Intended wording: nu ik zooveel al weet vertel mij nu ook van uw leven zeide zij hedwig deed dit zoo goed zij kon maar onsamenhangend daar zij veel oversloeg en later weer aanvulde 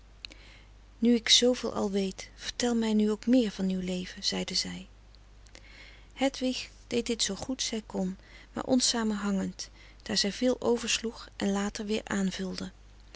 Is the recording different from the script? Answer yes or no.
yes